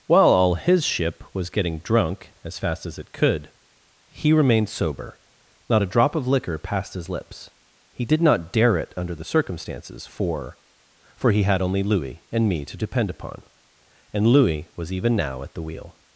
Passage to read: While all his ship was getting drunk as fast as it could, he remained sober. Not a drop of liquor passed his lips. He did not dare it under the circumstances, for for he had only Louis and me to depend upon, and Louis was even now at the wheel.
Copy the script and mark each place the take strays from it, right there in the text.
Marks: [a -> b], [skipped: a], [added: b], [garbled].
While all his ship was getting drunk as fast as it could, he remained sober. Not a drop of liquor passed his lips. He did not dare it under the circumstances, for for he had only Louis and me to depend upon, and Louis was even now at the wheel.